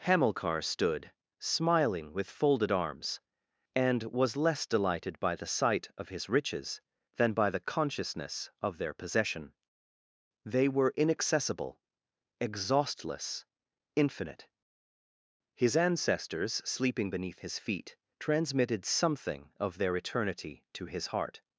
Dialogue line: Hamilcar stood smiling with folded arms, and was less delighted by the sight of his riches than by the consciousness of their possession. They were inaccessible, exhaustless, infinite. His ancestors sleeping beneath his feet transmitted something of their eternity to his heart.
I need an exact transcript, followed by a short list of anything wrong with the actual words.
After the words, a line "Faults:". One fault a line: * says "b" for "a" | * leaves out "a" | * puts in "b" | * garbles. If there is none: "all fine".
Hamilcar stood smiling with folded arms, and was less delighted by the sight of his riches than by the consciousness of their possession. They were inaccessible, exhaustless, infinite. His ancestors sleeping beneath his feet transmitted something of their eternity to his heart.
Faults:
all fine